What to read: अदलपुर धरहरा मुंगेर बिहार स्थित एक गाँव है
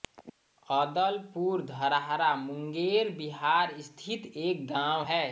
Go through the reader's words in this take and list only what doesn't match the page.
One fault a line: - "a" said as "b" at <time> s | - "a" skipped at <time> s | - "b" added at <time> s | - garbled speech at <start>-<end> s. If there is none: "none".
none